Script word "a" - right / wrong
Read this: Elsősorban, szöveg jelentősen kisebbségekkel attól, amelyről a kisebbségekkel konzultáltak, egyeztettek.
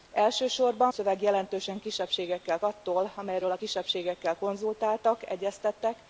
right